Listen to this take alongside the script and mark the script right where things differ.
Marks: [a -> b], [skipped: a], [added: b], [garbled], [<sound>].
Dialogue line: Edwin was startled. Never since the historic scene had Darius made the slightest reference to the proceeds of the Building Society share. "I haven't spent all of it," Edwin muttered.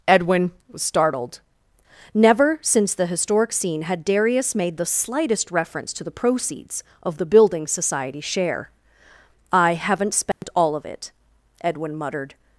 Edwin was startled. Never since the historic scene had Darius made the slightest reference to the proceeds of the Building Society share. "I haven't spent [dropout] all of it," Edwin muttered.